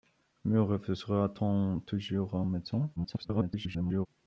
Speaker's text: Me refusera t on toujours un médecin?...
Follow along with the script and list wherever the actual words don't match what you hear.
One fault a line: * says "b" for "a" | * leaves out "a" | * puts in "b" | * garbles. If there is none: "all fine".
* garbles